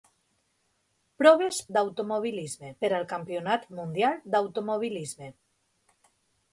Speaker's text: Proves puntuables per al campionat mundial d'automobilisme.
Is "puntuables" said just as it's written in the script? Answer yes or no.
no